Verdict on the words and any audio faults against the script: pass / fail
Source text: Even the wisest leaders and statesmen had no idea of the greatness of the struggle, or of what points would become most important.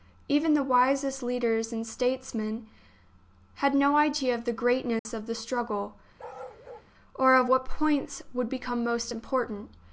fail